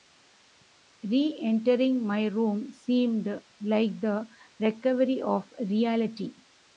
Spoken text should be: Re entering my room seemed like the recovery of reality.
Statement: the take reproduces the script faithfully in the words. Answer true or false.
true